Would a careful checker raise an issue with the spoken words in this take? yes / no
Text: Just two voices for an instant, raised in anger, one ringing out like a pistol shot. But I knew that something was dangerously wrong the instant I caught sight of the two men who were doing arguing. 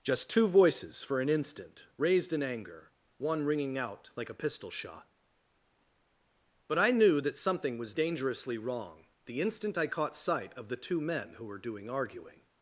no